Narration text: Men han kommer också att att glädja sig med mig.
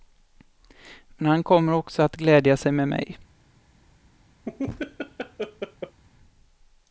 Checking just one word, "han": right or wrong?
right